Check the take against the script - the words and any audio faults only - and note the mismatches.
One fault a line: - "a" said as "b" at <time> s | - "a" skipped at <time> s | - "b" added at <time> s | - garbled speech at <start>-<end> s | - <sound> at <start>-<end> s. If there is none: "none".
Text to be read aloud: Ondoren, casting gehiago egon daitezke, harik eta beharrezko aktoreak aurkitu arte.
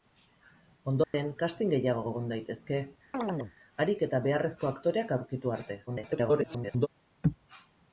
- dropout at 1.0-1.1 s
- chirp at 3.1-3.5 s
- garbled speech at 5.9-6.9 s